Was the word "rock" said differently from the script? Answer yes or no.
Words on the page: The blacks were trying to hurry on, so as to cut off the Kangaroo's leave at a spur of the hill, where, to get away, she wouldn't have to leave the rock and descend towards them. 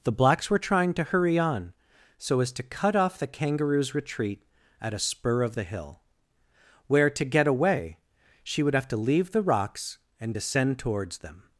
yes